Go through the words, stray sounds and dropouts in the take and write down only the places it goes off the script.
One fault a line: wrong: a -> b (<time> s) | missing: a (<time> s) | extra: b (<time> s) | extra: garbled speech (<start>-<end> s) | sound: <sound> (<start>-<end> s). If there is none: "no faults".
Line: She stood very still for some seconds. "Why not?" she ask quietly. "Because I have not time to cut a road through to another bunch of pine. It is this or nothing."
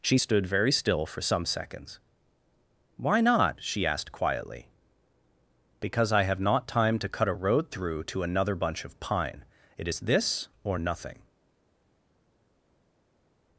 wrong: ask -> asked (3.9 s)